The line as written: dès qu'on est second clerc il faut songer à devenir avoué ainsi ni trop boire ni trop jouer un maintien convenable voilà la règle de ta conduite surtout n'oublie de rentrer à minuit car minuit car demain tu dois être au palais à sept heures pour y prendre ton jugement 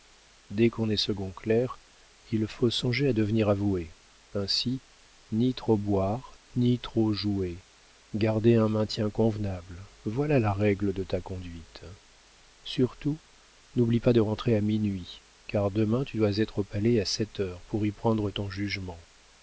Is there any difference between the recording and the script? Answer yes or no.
yes